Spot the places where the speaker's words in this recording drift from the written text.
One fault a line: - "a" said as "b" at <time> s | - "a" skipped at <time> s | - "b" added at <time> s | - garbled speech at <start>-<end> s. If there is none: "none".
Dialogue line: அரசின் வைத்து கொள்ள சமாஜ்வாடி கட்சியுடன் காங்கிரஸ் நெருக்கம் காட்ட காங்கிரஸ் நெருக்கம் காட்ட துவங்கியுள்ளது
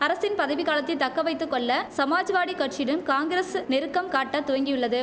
- "பதவி காலத்தை தக்க" added at 0.4 s
- "காங்கிரஸ் நெருக்கம் காட்ட" skipped at 4.4 s